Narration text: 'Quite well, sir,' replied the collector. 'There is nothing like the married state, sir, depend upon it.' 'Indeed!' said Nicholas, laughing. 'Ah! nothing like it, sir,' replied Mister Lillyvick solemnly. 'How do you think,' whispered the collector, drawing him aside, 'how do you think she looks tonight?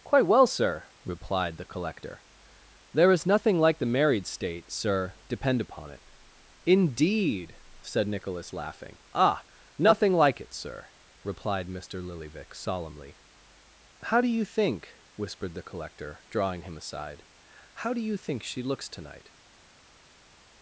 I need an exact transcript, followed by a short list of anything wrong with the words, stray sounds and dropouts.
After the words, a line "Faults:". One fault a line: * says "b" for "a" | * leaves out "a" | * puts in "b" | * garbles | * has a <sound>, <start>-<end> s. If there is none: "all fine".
'Quite well, sir,' replied the collector. 'There is nothing like the married state, sir, depend upon it.' 'Indeed!' said Nicholas, laughing. 'Ah! nothing like it, sir,' replied Mister Lillyvick solemnly. 'How do you think,' whispered the collector, drawing him aside, 'how do you think she looks tonight?
Faults:
all fine